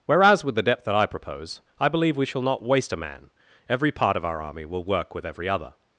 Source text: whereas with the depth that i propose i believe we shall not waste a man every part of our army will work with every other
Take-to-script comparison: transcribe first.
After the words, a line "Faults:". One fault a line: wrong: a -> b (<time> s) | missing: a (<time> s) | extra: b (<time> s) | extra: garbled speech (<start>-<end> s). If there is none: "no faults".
whereas with the depth that i propose i believe we shall not waste a man every part of our army will work with every other
Faults:
no faults